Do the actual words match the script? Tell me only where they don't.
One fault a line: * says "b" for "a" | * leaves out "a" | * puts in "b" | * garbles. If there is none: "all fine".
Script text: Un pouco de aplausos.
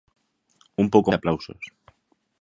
all fine